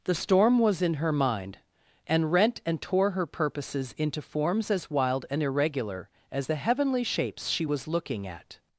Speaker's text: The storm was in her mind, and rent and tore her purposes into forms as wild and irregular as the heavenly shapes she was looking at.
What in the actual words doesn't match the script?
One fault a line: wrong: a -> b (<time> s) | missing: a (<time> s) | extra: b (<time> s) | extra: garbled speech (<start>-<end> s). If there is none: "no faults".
no faults